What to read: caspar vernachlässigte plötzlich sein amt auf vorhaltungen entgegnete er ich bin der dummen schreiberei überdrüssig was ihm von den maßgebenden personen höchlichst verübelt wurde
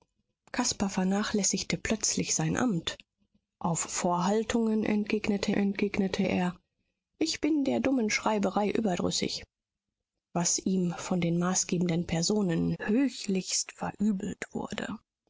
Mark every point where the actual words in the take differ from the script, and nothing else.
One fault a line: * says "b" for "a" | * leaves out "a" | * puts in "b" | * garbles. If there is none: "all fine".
* puts in "entgegnete"